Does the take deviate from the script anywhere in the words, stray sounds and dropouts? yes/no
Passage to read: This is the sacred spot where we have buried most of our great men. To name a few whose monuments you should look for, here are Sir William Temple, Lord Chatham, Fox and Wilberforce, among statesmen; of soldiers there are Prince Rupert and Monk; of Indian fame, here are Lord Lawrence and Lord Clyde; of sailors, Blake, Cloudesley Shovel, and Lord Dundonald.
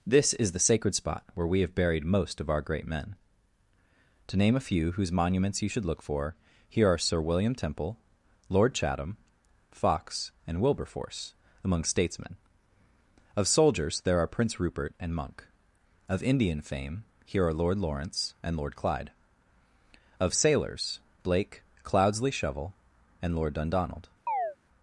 yes